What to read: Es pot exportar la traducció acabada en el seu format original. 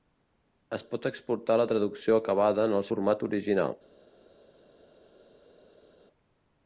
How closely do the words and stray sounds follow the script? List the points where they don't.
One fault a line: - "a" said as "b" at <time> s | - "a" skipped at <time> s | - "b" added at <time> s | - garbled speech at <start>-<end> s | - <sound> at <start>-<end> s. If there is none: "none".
- "seu" skipped at 2.9 s